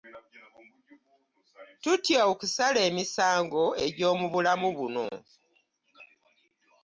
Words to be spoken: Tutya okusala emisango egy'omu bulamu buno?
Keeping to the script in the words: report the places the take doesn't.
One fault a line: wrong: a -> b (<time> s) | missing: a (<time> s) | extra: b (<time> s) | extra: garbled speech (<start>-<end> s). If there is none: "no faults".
no faults